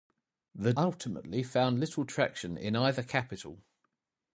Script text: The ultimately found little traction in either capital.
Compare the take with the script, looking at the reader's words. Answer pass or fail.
pass